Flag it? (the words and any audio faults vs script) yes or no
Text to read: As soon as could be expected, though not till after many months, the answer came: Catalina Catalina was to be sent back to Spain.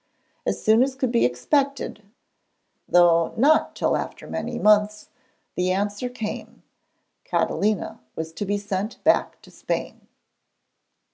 yes